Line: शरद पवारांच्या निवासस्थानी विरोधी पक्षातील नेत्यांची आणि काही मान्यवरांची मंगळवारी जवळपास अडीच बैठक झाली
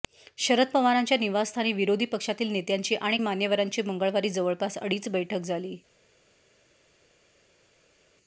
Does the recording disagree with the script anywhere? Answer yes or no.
yes